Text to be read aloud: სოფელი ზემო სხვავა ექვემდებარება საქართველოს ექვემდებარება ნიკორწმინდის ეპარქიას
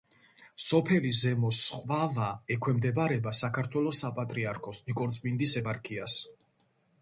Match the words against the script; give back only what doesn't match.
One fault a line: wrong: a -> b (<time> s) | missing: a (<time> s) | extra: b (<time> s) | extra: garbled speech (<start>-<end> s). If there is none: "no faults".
wrong: ექვემდებარება -> საპატრიარქოს (4.1 s)